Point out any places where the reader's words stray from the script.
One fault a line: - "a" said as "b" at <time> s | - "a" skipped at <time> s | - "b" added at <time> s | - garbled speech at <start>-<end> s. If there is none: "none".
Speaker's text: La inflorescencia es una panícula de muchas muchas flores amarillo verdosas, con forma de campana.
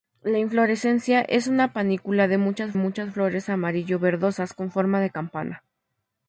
none